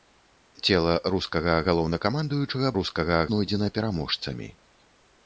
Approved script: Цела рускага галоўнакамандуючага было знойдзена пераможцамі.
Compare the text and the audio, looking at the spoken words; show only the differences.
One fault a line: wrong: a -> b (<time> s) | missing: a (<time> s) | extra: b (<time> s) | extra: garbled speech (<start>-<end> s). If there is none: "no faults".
wrong: было -> рускага (2.8 s)